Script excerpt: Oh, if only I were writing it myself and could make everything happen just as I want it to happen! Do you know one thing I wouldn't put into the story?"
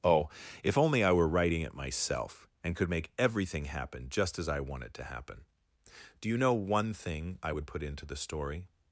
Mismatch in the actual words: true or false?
true